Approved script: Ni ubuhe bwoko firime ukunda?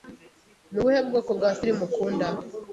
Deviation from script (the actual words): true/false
true